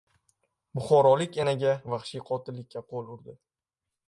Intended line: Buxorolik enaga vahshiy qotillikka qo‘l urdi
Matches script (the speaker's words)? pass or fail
pass